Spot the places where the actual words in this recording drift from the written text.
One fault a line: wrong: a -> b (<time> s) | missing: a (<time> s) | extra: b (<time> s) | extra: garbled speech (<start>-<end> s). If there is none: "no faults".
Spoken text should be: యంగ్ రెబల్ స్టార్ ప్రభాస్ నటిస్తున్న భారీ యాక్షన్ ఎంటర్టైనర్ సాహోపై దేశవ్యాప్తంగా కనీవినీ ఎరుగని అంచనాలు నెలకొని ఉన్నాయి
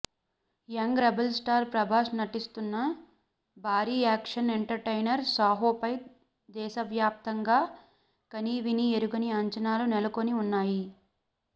no faults